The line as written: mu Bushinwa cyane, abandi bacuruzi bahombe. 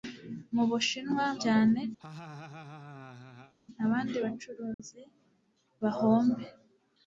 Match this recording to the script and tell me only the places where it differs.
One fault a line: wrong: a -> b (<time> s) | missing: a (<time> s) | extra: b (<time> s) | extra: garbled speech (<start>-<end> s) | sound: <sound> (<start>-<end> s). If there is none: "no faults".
sound: laugh (2.0-3.5 s)
sound: dropout (4.7-4.8 s)